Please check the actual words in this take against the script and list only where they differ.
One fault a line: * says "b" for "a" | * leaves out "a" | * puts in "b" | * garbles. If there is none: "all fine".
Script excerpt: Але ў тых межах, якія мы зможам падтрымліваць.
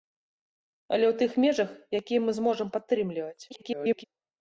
* garbles